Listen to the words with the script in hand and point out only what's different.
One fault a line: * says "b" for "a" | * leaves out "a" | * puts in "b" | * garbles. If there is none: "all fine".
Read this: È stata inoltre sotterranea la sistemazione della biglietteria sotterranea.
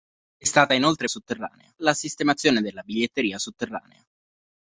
all fine